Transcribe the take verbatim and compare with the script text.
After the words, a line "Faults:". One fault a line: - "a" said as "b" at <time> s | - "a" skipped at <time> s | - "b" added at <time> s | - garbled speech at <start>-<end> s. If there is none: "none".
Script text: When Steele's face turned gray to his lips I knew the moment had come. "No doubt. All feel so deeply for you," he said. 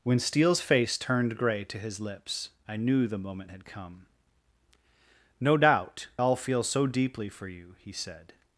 When Steele's face turned gray to his lips I knew the moment had come. "No doubt. All feel so deeply for you," he said.
Faults:
none